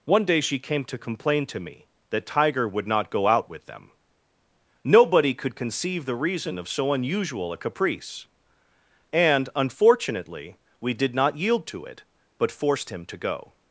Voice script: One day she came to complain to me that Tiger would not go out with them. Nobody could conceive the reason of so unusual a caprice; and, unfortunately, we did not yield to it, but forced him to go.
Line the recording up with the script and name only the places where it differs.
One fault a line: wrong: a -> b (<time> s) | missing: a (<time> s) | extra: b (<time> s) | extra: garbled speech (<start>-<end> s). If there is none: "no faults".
no faults